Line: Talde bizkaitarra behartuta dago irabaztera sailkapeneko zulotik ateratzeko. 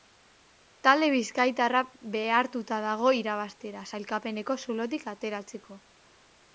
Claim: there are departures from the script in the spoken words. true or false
false